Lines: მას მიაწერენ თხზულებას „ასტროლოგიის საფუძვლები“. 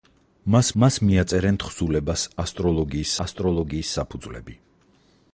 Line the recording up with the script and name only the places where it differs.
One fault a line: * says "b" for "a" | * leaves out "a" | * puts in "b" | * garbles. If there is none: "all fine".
* puts in "მას"
* puts in "ასტროლოგიის"